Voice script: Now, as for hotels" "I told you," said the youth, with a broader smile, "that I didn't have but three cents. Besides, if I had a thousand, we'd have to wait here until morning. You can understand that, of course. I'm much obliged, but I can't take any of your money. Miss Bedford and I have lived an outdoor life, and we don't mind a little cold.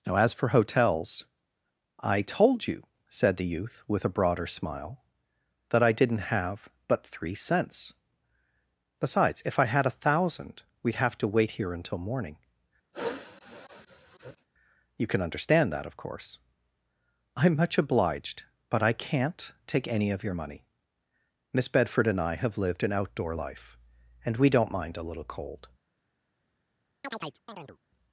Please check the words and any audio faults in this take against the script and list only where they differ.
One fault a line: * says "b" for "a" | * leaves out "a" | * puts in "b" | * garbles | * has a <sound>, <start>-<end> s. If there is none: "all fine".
* has a sniff, 12.9-14.5 s
* has a chirp, 27.0-27.8 s